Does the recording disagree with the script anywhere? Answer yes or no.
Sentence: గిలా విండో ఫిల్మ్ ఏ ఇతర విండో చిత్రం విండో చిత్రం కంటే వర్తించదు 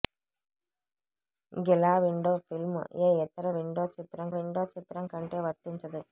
no